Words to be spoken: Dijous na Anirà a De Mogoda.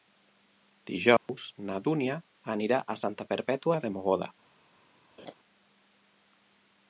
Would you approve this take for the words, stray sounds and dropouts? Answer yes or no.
no